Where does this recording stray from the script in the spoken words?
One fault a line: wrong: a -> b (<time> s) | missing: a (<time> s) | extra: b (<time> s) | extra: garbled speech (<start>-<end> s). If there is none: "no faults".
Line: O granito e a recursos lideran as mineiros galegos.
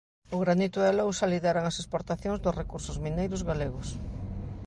wrong: recursos -> lousa (1.0 s)
extra: exportacións dos recursos (1.8 s)